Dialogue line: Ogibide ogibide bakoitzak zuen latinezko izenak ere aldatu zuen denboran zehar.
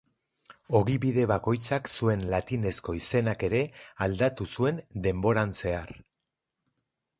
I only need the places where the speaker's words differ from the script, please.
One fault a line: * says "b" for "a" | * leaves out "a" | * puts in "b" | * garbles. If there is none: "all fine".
* leaves out "ogibide"